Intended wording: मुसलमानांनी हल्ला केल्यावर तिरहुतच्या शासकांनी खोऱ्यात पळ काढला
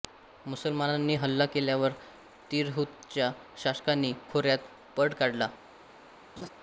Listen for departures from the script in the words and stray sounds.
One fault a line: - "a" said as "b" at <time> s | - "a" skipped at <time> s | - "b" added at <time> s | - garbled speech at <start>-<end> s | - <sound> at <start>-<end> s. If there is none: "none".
- laugh at 6.4-6.5 s